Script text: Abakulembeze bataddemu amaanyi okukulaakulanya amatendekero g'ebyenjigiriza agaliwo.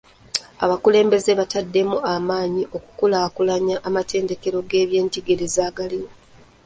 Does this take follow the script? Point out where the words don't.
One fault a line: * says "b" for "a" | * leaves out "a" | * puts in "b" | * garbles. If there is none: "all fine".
all fine